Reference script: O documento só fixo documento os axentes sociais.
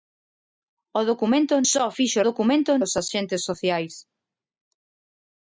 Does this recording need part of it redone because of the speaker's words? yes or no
no